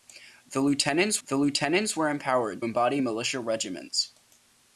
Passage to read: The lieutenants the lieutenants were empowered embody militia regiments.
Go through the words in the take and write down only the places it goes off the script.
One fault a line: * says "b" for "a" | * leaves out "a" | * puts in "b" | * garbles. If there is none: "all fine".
all fine